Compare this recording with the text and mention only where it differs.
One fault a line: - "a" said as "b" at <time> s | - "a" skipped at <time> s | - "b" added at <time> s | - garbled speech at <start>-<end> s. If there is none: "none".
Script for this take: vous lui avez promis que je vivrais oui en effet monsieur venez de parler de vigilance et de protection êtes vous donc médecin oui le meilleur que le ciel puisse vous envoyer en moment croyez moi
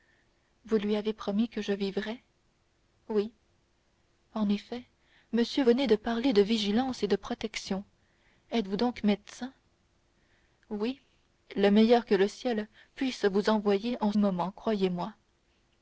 none